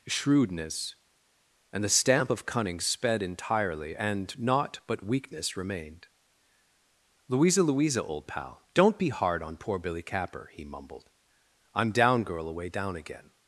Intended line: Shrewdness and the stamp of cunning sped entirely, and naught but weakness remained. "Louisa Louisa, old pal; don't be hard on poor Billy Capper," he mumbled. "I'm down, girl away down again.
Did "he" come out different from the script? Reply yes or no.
no